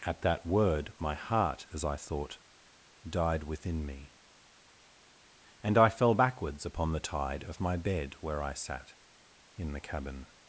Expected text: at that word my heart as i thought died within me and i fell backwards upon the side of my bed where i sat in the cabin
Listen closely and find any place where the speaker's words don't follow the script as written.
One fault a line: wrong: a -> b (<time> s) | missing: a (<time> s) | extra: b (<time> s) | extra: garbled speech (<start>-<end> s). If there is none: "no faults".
wrong: side -> tide (7.0 s)